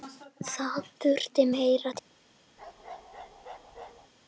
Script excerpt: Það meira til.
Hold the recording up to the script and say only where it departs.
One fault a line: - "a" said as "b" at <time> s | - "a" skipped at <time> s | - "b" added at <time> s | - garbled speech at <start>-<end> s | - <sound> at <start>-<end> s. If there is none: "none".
- "þurfti" added at 1.0 s
- bark at 2.6-4.1 s